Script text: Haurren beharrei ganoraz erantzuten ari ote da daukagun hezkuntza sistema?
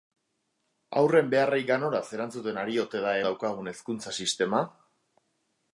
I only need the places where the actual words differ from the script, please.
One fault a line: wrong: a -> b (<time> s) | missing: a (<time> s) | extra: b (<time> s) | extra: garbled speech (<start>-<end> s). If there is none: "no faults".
no faults